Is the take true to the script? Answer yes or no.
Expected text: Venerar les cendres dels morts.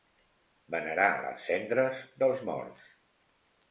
yes